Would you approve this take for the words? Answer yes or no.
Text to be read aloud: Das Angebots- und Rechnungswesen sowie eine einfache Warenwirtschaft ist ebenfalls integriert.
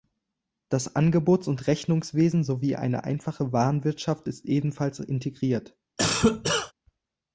yes